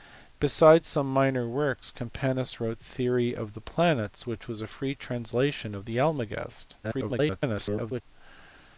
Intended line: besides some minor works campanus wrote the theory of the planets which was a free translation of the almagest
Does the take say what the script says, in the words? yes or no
no